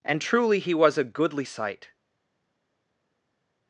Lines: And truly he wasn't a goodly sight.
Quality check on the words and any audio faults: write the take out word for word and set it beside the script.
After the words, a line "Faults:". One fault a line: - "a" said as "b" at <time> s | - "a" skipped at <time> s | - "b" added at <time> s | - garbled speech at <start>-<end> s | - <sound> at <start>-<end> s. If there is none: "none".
And truly he was a goodly sight.
Faults:
- "wasn't" said as "was" at 0.7 s